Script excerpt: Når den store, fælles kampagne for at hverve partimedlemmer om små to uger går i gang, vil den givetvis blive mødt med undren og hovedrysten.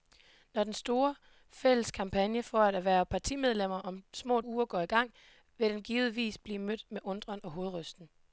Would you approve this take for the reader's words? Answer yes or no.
no